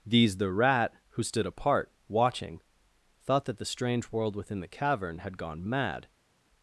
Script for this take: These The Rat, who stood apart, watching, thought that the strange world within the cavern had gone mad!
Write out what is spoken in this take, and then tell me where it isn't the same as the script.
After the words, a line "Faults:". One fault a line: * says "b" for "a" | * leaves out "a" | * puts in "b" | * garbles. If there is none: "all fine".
These The Rat, who stood apart, watching, thought that the strange world within the cavern had gone mad!
Faults:
all fine